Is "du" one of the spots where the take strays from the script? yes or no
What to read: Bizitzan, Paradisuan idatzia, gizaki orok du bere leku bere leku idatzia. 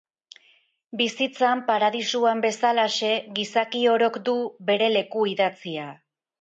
no